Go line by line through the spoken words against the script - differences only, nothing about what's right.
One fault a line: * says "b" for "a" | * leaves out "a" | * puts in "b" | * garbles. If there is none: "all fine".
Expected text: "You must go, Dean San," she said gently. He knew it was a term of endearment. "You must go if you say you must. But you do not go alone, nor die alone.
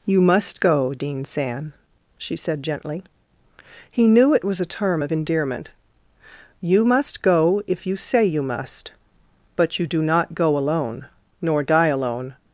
all fine